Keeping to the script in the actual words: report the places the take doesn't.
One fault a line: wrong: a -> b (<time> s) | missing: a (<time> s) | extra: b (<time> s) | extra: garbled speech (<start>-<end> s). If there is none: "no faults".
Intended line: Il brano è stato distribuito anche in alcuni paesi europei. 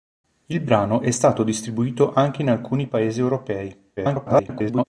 extra: garbled speech (4.0-4.8 s)